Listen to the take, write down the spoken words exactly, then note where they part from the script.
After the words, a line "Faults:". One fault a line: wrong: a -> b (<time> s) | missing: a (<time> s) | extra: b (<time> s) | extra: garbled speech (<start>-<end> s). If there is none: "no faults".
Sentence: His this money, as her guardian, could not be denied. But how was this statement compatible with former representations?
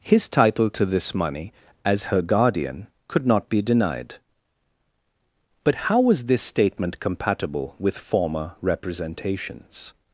His title to this money, as her guardian, could not be denied. But how was this statement compatible with former representations?
Faults:
extra: title to (0.3 s)